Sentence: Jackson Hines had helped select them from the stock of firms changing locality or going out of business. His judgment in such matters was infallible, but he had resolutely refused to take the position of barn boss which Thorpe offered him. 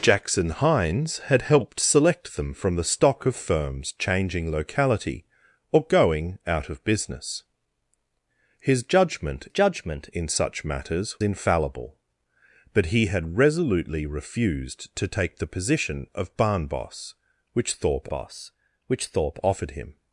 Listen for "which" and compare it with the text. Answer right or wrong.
right